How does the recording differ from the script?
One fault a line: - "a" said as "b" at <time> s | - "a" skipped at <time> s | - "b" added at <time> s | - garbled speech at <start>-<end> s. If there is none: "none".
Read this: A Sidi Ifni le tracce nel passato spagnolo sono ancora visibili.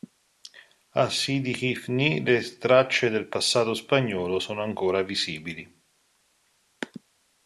- "nel" said as "del" at 3.1 s